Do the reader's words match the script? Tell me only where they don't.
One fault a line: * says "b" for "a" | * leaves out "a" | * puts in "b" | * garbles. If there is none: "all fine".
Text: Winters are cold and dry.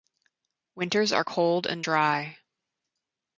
all fine